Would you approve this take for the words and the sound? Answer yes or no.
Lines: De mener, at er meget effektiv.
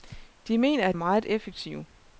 yes